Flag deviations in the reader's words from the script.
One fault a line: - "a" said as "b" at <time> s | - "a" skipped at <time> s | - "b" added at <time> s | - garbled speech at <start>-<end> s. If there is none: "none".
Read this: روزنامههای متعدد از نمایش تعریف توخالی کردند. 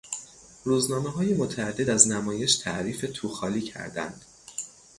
none